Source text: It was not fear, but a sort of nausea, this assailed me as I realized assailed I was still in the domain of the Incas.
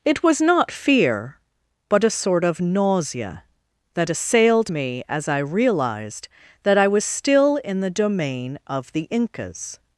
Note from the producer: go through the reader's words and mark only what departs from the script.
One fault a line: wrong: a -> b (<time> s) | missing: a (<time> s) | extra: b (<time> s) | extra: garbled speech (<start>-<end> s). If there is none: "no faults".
wrong: this -> that (3.9 s)
wrong: assailed -> that (6.6 s)